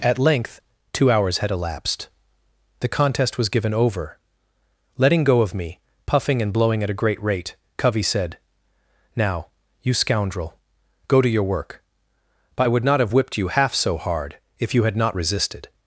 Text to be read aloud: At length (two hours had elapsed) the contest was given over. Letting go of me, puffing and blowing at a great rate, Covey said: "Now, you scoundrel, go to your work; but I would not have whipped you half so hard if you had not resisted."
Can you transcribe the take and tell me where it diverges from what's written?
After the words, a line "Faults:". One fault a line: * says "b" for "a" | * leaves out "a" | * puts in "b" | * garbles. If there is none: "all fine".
At length (two hours had elapsed) the contest was given over. Letting go of me, puffing and blowing at a great rate, Covey said: "Now, you scoundrel, go to your work; but I would not have whipped you half so hard if you had not resisted."
Faults:
all fine